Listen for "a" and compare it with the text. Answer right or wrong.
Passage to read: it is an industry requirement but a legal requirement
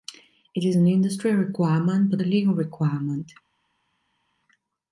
right